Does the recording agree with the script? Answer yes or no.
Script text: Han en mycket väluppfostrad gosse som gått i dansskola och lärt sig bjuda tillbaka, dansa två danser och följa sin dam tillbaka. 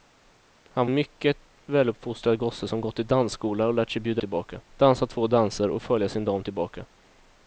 yes